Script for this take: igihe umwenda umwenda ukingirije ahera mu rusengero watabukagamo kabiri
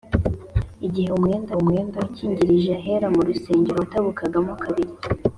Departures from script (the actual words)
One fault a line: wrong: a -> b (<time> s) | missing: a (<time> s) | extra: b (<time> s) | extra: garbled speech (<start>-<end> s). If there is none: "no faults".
no faults